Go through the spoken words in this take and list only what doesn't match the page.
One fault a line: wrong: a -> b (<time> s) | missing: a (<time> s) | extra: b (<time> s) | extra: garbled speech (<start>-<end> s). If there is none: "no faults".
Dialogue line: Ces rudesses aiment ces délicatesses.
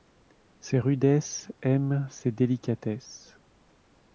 no faults